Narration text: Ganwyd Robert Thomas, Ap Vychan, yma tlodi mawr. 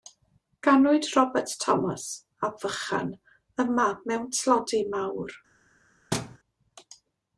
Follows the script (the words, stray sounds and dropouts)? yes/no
no